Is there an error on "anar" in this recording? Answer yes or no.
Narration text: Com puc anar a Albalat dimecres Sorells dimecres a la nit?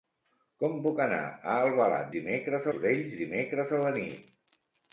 no